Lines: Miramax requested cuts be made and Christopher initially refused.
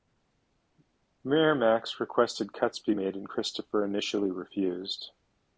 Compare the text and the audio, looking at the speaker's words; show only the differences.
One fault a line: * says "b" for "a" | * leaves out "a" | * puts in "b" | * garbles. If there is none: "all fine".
all fine